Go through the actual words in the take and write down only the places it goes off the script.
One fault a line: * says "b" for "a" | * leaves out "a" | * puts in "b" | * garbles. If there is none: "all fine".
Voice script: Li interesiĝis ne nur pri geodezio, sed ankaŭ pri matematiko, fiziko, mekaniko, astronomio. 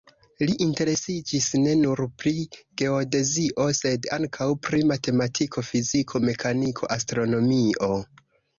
all fine